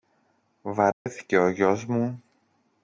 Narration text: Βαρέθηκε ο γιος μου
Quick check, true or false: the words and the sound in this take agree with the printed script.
false